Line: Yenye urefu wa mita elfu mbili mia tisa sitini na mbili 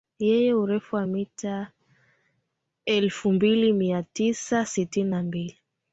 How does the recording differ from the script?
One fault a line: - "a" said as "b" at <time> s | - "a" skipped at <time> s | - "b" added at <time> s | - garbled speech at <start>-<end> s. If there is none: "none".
none